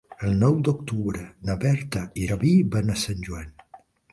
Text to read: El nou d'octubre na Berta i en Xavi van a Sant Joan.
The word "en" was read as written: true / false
false